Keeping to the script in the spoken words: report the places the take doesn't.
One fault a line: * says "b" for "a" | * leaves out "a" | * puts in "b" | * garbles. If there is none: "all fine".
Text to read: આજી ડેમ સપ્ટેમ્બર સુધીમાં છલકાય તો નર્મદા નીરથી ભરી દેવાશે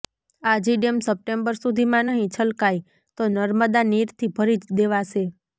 * puts in "નહીં"